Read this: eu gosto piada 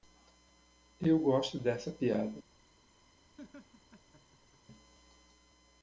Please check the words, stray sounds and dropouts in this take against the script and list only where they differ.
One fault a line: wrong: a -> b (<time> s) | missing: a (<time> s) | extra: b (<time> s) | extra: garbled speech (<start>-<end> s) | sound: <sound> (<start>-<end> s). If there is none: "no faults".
extra: dessa (1.6 s)
sound: laugh (3.4-4.6 s)